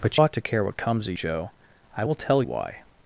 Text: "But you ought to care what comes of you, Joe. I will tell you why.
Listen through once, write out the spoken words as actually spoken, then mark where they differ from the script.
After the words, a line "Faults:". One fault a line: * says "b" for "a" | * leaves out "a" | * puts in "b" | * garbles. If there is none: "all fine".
"But ought to care what comes of Joe. I will tell why.
Faults:
* leaves out "you"
* leaves out "you"
* leaves out "you"